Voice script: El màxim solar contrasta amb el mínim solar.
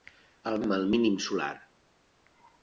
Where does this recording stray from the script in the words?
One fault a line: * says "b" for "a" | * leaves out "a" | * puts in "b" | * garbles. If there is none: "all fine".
* leaves out "màxim solar contrasta"